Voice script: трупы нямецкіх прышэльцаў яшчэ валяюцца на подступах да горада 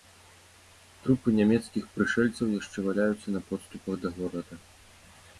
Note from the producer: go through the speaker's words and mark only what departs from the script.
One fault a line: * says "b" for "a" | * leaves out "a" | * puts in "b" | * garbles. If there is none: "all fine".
all fine